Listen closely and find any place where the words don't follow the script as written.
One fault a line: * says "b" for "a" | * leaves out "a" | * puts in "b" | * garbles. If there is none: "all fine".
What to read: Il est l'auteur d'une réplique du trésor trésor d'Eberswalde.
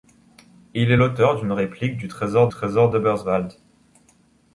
all fine